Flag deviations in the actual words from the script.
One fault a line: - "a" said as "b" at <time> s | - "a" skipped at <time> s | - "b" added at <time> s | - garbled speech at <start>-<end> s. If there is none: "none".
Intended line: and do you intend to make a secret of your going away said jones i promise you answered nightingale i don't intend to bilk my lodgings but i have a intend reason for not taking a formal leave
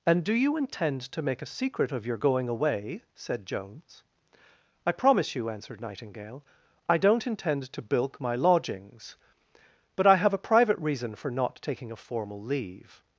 - "intend" said as "private" at 10.4 s